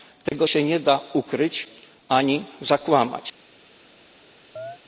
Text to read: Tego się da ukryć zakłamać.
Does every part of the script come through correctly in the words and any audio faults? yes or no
no